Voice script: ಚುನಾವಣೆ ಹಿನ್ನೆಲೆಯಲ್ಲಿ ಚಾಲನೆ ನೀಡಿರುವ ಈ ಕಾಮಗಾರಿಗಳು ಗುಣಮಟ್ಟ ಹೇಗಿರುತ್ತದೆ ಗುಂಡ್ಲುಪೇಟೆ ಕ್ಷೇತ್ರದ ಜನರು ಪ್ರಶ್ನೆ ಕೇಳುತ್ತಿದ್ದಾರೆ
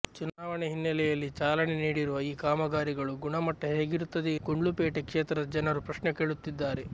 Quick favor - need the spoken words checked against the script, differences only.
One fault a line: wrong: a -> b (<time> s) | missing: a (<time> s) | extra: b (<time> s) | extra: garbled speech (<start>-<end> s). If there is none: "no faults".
no faults